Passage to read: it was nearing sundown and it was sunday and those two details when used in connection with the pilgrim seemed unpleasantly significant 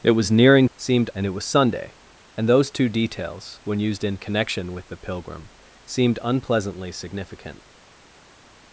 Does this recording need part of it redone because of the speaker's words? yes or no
yes